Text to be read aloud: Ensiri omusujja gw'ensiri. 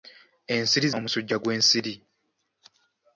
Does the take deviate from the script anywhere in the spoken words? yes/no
no